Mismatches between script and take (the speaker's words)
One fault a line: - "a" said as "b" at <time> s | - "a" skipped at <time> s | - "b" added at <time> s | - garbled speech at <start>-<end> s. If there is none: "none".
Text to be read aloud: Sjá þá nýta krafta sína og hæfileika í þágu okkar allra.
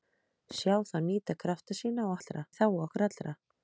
- "hæfileika" said as "allra" at 2.2 s